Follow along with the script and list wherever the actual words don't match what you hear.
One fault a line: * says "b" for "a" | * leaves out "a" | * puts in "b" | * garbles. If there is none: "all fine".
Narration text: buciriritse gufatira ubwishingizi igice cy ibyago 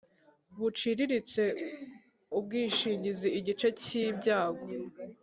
* leaves out "gufatira"